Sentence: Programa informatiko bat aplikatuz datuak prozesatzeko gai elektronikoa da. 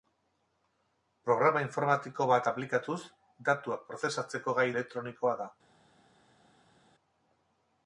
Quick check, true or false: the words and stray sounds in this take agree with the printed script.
true